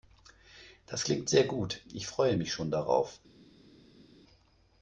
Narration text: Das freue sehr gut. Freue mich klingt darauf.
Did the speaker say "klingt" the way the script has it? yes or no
no